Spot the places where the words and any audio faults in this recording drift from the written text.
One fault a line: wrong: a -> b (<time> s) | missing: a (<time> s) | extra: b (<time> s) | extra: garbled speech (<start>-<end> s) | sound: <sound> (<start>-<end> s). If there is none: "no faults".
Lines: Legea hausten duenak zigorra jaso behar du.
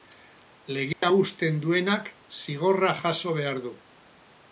sound: dropout (0.9-1.0 s)